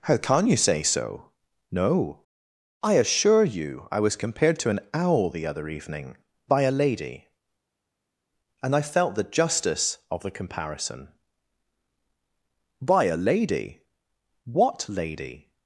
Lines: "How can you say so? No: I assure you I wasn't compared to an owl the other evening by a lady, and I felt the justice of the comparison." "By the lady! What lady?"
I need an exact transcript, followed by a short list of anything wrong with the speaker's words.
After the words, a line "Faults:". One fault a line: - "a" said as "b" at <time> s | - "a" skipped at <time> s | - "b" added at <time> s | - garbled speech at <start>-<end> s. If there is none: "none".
"How can you say so? No: I assure you I was compared to an owl the other evening by a lady, and I felt the justice of the comparison." "By a lady! What lady?"
Faults:
- "wasn't" said as "was" at 4.0 s
- "the" said as "a" at 13.1 s